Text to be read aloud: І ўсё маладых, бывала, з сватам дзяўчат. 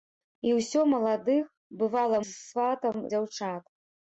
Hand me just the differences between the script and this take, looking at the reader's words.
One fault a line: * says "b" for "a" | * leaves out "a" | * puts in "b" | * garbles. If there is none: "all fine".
all fine